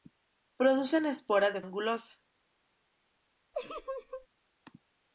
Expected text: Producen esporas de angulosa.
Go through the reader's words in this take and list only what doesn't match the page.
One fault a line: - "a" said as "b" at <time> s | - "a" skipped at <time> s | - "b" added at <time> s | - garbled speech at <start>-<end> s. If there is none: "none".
none